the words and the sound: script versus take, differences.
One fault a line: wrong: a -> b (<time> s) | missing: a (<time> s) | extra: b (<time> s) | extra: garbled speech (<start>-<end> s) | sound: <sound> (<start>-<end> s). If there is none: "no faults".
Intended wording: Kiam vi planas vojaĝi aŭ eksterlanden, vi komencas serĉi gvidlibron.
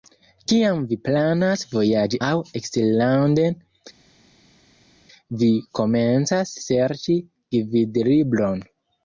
no faults